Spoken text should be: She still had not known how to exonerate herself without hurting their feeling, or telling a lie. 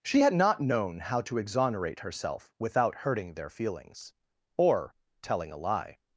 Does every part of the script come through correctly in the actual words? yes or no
no